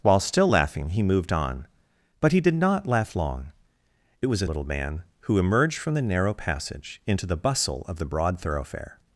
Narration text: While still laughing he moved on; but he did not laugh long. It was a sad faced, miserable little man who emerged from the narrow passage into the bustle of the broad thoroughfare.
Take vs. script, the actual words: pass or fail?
fail